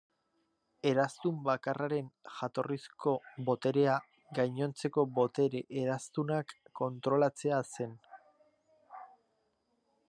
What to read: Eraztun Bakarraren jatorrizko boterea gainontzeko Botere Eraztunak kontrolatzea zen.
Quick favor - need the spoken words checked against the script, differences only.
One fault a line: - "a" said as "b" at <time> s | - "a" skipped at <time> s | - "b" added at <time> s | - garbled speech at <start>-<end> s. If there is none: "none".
none